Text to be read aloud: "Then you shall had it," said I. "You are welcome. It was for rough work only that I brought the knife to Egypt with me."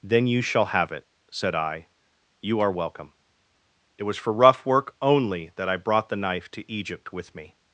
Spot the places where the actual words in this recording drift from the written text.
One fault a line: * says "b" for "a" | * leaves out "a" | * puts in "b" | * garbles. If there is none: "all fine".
* says "have" for "had"